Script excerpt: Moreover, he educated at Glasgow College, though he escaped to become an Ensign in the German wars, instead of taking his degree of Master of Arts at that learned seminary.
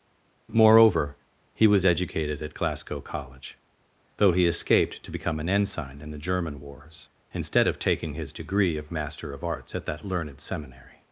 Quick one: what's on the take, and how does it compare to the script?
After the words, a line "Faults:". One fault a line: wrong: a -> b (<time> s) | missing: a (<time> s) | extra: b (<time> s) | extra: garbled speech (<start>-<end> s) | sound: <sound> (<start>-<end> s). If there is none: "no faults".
Moreover, he was educated at Glasgow College, though he escaped to become an Ensign in the German wars, instead of taking his degree of Master of Arts at that learned seminary.
Faults:
extra: was (1.7 s)